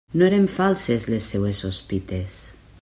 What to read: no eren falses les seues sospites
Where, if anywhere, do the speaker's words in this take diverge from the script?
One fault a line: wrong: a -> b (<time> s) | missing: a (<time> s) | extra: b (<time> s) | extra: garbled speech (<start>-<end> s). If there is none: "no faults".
no faults